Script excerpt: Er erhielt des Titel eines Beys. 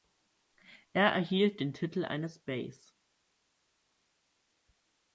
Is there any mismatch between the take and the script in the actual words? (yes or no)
yes